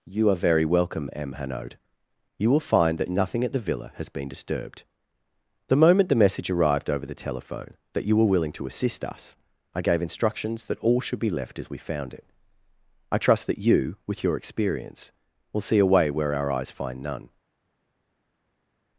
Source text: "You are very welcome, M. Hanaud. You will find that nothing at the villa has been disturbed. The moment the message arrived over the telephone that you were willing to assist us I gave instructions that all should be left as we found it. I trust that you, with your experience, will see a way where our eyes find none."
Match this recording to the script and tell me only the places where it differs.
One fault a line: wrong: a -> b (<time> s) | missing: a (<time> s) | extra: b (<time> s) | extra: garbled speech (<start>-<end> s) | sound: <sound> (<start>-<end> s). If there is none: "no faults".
no faults